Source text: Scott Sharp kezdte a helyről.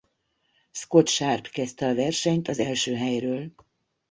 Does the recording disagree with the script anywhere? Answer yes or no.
yes